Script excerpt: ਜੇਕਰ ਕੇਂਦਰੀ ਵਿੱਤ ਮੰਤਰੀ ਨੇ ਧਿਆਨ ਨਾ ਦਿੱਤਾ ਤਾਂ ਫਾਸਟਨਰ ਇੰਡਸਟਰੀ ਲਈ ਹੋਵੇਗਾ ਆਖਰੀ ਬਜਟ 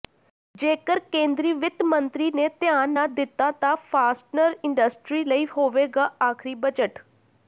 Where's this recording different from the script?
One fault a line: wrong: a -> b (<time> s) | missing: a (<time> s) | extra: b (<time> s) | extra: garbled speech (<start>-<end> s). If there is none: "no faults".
no faults